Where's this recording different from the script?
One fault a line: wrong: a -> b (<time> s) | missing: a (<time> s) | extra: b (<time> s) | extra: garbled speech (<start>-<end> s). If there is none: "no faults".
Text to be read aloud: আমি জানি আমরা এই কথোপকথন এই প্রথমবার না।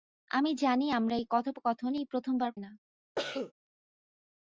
no faults